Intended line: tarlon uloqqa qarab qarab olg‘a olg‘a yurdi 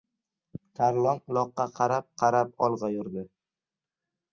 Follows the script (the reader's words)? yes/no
no